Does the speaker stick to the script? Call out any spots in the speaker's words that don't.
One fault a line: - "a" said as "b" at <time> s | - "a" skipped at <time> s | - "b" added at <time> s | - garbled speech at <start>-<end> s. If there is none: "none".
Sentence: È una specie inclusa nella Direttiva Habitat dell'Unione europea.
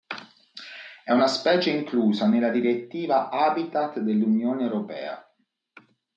none